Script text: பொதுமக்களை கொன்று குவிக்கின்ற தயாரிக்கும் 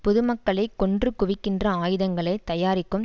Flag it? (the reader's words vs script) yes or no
yes